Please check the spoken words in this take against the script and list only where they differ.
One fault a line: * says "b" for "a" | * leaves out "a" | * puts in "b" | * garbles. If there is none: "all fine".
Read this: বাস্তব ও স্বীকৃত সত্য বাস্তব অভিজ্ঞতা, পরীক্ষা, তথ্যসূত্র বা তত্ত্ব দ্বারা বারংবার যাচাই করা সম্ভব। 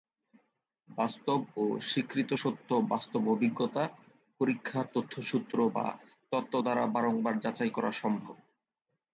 all fine